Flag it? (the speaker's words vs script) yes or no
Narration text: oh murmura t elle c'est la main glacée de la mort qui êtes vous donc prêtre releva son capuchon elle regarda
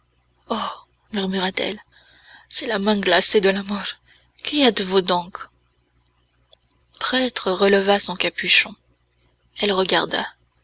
no